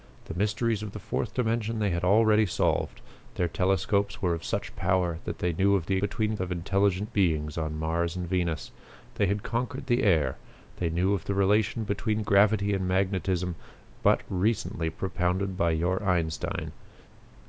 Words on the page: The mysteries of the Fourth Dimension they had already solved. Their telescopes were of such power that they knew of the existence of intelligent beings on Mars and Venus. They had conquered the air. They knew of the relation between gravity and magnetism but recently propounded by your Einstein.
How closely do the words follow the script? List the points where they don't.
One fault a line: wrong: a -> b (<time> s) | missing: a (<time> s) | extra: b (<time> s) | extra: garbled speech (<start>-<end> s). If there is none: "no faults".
wrong: existence -> between (6.0 s)